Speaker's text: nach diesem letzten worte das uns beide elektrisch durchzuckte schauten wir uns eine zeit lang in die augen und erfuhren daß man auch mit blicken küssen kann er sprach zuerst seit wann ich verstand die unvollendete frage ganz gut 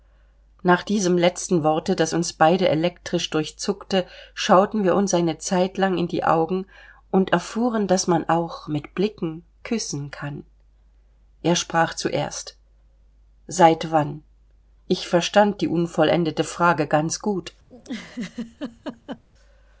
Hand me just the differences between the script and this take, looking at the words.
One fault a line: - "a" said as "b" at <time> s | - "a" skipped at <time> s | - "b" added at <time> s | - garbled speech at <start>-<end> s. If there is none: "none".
none